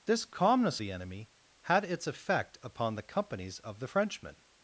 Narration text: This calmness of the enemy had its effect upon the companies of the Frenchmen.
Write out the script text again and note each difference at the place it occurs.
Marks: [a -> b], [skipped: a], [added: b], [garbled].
This calmness [skipped: of] the enemy had its effect upon the companies of the Frenchmen.